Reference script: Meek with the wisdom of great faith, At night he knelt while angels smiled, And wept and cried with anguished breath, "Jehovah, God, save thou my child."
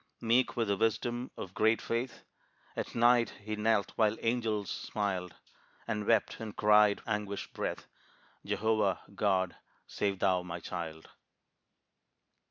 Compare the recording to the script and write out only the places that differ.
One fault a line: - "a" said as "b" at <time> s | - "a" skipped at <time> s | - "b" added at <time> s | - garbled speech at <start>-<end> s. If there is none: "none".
- "with" skipped at 7.0 s